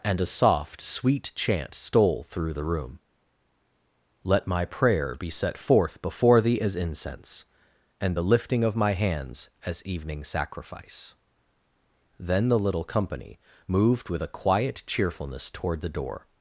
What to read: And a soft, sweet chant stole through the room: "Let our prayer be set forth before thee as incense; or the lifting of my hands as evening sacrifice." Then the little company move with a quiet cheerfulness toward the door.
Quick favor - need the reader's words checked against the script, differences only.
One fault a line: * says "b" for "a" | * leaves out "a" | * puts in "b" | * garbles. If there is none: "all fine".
* says "my" for "our"
* says "and" for "or"
* says "moved" for "move"